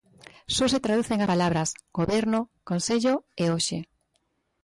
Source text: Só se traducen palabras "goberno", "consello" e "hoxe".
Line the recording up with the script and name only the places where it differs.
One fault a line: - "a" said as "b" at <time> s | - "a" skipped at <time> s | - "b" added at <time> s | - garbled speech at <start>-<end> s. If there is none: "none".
none